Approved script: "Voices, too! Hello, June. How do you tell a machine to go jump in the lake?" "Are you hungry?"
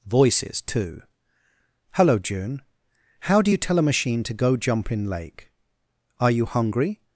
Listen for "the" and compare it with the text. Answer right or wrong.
wrong